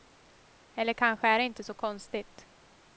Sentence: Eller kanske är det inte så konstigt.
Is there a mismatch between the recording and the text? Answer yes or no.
no